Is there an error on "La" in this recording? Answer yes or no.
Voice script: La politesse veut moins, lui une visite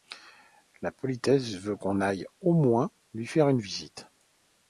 no